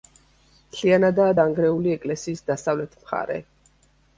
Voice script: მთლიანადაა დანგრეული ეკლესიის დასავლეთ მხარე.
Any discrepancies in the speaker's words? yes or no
no